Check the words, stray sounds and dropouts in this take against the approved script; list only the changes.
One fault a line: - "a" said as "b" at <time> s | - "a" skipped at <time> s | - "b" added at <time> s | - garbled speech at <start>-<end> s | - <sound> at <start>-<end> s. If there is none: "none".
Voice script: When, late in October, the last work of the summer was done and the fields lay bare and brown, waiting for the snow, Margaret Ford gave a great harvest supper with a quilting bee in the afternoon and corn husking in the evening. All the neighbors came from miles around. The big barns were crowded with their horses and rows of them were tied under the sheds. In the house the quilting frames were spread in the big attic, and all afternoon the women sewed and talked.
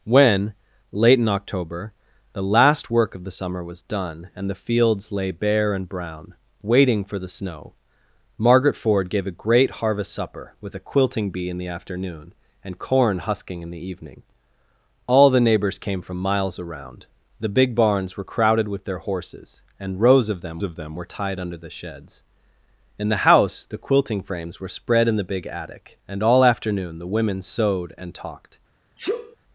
- "of them" added at 20.6 s
- sneeze at 29.0-29.4 s